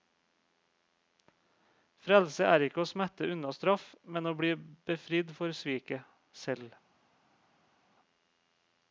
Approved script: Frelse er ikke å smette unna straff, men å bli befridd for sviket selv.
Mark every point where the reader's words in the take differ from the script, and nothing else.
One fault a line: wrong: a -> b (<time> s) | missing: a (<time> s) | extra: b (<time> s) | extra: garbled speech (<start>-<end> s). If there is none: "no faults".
no faults